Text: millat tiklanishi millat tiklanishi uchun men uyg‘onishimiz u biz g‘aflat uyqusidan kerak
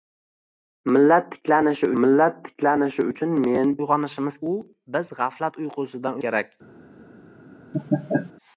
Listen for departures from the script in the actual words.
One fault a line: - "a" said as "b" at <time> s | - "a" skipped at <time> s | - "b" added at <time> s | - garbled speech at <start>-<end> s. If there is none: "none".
none